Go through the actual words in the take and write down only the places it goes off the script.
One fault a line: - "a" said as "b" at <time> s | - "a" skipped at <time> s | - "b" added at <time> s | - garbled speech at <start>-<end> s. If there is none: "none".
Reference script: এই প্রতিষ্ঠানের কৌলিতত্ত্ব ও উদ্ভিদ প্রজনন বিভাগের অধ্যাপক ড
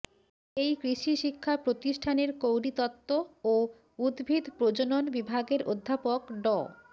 - "কৃষি শিক্ষা" added at 0.8 s